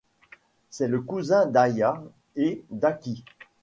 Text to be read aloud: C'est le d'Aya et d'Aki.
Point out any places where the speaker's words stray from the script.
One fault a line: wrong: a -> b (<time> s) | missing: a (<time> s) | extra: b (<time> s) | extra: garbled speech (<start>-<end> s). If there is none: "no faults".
extra: cousin (1.0 s)